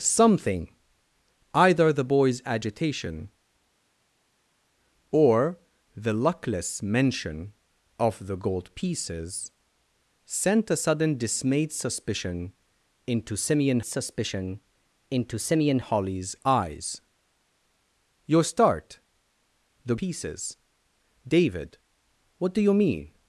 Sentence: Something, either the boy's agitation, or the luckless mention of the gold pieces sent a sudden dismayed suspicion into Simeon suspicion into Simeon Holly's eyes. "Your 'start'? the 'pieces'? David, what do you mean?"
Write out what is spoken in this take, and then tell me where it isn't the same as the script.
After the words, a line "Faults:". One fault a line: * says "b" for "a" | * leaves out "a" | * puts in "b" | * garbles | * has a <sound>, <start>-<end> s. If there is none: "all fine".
Something, either the boy's agitation, or the luckless mention of the gold pieces sent a sudden dismayed suspicion into Simeon suspicion into Simeon Holly's eyes. "Your 'start'? the 'pieces'? David, what do you mean?"
Faults:
all fine